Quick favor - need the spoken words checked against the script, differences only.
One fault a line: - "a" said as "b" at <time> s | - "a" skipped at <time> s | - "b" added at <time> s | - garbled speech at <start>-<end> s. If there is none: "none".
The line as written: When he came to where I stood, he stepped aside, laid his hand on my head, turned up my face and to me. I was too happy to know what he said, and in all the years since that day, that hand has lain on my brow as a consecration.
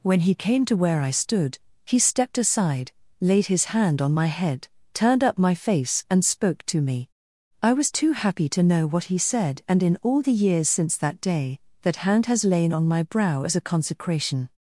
- "spoke" added at 6.2 s